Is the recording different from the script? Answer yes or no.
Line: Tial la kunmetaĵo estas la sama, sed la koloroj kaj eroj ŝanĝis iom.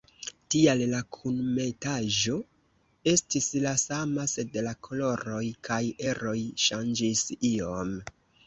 yes